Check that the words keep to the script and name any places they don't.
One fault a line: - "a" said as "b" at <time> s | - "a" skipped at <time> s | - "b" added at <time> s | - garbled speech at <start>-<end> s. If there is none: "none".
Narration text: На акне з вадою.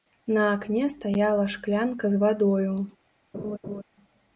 - "стаяла шклянка" added at 0.9 s